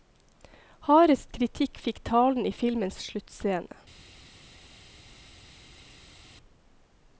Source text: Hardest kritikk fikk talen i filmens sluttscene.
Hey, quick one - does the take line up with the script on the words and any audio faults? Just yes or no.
yes